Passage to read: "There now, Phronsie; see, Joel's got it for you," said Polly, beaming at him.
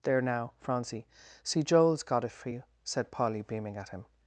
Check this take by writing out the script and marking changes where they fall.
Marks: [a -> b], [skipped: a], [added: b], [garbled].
"There now, Phronsie; see, Joel's got it for you," said Polly, beaming at him.